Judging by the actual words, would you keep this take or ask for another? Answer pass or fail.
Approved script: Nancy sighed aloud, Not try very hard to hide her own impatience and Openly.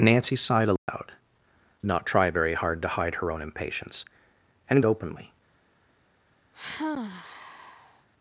pass